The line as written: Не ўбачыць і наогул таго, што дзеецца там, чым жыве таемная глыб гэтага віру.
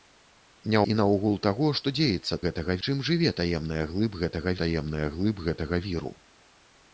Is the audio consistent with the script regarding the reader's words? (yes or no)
no